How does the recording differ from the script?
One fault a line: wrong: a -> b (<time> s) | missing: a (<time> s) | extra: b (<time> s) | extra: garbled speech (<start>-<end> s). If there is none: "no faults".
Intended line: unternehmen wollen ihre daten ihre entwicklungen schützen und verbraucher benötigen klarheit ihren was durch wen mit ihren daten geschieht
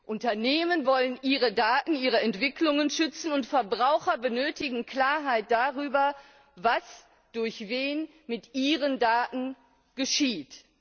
wrong: ihren -> darüber (5.5 s)